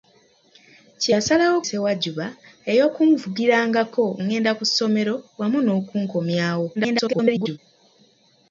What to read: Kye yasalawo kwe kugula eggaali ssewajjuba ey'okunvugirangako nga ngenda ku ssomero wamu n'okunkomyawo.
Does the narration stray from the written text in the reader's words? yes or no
yes